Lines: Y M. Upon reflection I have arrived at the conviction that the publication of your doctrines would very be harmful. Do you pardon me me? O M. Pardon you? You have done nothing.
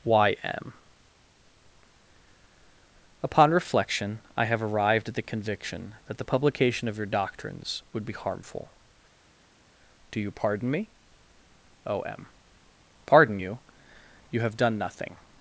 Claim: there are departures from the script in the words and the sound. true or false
true